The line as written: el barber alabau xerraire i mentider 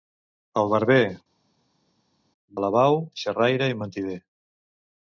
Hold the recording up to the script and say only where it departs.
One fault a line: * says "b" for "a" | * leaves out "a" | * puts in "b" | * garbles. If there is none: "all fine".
all fine